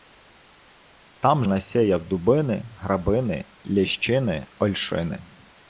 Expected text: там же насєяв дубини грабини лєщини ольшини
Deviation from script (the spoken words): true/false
true